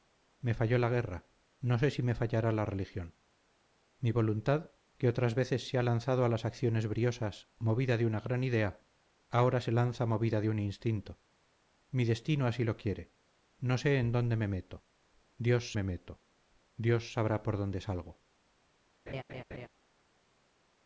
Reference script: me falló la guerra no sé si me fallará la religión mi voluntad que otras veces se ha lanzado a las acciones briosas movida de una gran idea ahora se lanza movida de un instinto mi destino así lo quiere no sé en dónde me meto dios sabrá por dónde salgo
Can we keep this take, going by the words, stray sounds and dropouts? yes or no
no